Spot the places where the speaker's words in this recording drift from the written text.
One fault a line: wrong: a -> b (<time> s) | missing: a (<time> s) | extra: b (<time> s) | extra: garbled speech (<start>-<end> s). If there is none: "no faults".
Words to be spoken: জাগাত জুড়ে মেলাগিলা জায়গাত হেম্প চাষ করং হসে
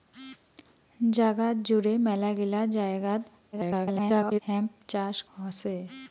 extra: garbled speech (3.5-4.4 s)
missing: করং (5.2 s)